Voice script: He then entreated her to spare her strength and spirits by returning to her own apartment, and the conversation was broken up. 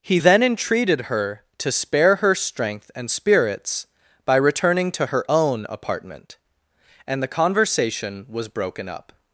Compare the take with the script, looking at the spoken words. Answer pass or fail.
pass